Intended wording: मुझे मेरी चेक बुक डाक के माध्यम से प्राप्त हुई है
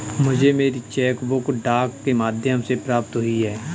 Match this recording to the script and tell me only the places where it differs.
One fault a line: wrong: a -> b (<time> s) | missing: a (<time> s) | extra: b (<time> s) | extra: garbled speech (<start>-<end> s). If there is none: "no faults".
no faults